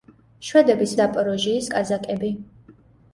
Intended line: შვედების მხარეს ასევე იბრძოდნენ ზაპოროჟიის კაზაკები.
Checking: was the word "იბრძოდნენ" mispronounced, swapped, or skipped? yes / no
yes